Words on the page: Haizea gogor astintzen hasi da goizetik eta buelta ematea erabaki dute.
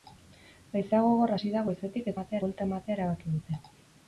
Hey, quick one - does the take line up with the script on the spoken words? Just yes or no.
no